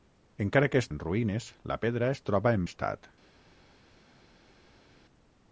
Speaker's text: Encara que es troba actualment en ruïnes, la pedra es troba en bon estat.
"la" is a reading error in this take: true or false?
false